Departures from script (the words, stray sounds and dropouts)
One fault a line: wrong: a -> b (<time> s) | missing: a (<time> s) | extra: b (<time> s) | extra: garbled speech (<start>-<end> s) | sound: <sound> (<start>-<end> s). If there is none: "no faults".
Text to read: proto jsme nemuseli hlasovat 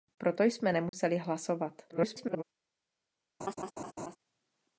sound: dropout (0.9-0.9 s)
extra: garbled speech (1.9-2.4 s)
sound: laugh (3.4-4.2 s)